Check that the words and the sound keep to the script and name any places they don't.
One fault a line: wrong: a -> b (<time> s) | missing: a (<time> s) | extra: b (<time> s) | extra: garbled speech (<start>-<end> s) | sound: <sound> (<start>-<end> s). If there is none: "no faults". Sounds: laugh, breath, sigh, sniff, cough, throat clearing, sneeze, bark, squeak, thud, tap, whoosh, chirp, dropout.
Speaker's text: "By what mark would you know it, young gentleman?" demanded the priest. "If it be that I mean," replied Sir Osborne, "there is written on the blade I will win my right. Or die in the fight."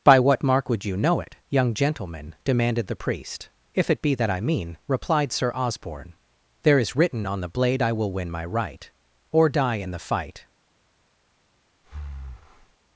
sound: breath (11.8-12.8 s)